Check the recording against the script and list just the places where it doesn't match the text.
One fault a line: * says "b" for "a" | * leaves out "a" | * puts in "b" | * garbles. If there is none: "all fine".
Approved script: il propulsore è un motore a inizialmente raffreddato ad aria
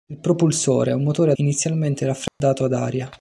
all fine